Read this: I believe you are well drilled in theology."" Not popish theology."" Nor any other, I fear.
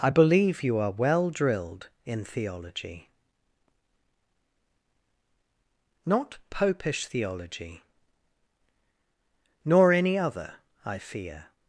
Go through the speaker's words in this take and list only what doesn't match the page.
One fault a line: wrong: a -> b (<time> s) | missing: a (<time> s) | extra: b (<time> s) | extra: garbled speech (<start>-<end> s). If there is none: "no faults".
no faults